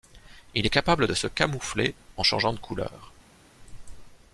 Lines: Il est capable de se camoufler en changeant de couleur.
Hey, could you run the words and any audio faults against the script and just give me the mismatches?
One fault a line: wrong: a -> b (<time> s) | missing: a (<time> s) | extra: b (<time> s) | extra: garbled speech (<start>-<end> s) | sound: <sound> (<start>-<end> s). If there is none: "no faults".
no faults